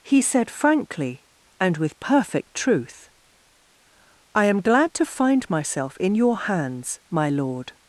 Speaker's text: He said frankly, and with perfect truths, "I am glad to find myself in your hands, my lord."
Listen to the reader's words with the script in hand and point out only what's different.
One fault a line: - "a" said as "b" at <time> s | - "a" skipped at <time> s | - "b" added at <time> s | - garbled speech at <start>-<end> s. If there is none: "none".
- "truths" said as "truth" at 2.5 s